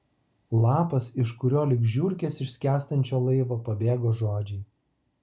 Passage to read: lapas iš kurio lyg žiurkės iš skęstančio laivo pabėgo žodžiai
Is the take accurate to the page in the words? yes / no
yes